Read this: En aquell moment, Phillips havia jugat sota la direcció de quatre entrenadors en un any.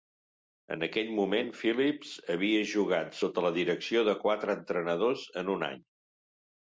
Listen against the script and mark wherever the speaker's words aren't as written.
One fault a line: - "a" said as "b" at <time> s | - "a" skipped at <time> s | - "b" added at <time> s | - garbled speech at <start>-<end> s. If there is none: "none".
none